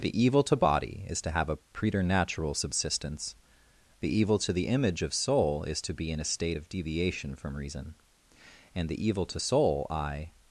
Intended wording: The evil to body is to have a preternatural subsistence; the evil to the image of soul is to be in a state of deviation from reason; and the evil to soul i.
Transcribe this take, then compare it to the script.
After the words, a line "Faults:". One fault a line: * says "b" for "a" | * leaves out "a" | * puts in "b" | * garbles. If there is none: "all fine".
The evil to body is to have a preternatural subsistence; the evil to the image of soul is to be in a state of deviation from reason; and the evil to soul i.
Faults:
all fine